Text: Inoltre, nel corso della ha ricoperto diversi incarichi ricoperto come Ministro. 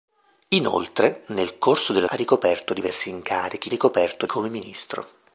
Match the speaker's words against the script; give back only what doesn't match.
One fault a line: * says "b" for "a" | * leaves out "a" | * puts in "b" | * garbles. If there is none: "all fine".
all fine